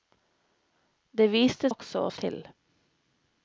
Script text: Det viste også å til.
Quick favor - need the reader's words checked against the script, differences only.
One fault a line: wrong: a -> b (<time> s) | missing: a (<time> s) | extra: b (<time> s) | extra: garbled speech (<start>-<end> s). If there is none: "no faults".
no faults